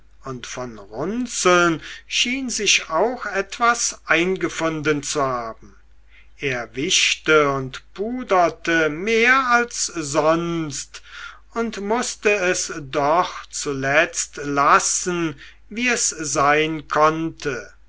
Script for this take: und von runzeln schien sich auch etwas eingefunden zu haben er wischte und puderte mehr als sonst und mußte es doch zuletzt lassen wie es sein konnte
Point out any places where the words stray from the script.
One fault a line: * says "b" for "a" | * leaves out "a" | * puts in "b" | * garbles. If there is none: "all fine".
all fine